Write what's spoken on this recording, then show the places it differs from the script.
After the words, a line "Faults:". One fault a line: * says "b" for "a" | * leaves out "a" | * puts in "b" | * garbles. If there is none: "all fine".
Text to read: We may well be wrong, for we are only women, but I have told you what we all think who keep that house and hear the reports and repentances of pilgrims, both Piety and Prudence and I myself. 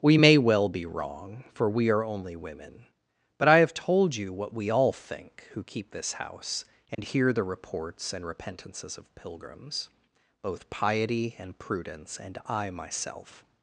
We may well be wrong, for we are only women, but I have told you what we all think who keep this house and hear the reports and repentances of pilgrims, both Piety and Prudence and I myself.
Faults:
* says "this" for "that"